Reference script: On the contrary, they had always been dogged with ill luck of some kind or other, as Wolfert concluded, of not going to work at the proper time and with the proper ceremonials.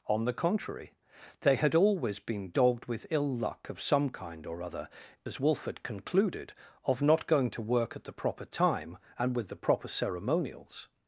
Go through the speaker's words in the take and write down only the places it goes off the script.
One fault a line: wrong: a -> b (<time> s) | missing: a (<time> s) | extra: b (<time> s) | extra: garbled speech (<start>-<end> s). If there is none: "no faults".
no faults